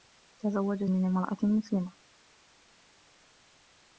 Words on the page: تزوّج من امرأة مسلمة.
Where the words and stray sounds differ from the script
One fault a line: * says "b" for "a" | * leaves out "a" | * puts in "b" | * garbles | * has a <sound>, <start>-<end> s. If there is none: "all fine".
all fine